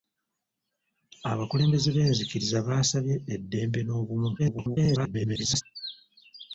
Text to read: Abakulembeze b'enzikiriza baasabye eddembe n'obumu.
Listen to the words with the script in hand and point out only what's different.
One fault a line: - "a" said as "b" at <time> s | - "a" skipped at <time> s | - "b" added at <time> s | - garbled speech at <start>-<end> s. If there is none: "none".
- garbled speech at 4.4-5.6 s